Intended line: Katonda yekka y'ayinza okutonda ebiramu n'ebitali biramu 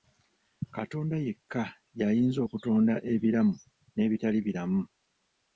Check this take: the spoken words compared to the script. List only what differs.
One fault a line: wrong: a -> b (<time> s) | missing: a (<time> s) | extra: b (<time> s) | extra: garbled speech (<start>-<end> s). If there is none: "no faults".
no faults